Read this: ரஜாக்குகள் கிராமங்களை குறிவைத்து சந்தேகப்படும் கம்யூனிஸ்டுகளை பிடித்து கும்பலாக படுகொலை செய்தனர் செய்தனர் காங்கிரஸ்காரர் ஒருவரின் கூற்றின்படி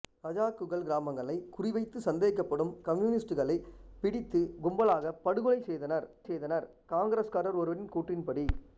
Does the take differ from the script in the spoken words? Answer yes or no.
no